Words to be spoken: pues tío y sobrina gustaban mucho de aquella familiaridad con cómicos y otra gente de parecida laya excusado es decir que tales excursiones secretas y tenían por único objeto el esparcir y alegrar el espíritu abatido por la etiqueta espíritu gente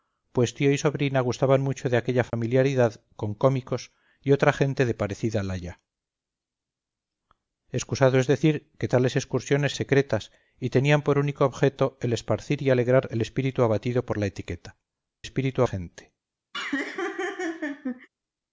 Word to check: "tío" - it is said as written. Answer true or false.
true